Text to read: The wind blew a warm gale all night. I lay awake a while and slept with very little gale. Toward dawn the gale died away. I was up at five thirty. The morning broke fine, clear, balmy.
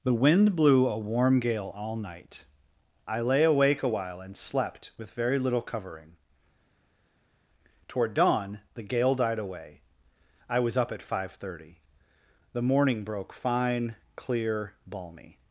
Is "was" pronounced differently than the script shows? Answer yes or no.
no